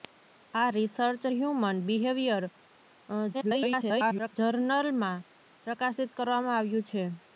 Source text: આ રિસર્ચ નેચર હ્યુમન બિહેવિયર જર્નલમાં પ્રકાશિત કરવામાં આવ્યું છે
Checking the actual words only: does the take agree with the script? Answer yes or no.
no